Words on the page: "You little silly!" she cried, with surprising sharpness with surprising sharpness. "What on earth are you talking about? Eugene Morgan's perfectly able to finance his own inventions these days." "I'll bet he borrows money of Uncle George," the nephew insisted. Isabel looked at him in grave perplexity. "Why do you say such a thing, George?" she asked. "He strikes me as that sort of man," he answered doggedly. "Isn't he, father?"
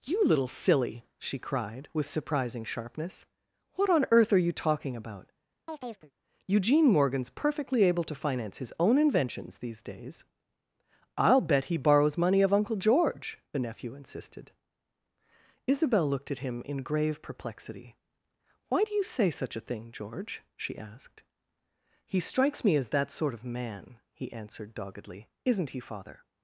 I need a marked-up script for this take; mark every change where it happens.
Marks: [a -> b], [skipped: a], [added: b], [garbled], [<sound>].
"You little silly!" she cried, with surprising sharpness [skipped: with surprising sharpness.] "What on earth are you talking about? [chirp] Eugene Morgan's perfectly able to finance his own inventions these days." "I'll bet he borrows money of Uncle George," the nephew insisted. Isabel looked at him in grave perplexity. "Why do you say such a thing, George?" she asked. "He strikes me as that sort of man," he answered doggedly. "Isn't he, father?"